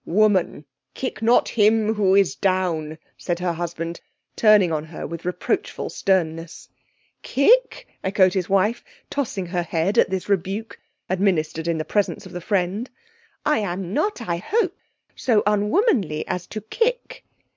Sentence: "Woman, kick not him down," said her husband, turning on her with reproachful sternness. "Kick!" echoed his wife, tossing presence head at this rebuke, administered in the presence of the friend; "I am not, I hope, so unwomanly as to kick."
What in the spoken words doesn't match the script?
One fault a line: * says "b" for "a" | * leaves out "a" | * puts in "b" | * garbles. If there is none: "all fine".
* puts in "who is"
* says "her" for "presence"